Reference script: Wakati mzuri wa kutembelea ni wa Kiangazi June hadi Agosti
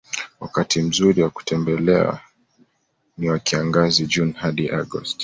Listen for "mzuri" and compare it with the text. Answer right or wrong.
right